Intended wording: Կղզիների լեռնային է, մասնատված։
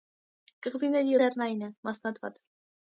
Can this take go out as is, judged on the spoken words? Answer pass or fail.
pass